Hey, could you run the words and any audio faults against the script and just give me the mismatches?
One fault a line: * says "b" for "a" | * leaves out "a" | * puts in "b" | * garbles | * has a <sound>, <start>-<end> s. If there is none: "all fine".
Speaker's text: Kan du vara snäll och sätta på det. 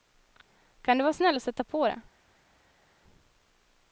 all fine